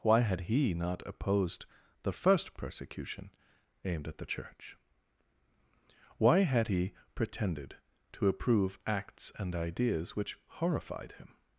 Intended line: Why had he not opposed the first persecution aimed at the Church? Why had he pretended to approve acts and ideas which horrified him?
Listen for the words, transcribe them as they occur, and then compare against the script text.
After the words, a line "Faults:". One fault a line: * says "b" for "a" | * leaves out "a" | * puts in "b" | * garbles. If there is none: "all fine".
Why had he not opposed the first persecution aimed at the Church? Why had he pretended to approve acts and ideas which horrified him?
Faults:
all fine